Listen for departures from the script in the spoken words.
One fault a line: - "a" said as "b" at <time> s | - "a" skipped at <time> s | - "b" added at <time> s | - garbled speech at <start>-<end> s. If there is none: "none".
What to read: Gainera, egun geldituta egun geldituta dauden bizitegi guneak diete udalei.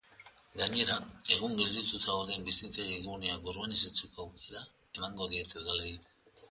- "egun geldituta" skipped at 2.0 s
- "urbanizatzeko aukera emango" added at 3.5 s